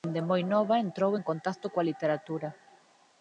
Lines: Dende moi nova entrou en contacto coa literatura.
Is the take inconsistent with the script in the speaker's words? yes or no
no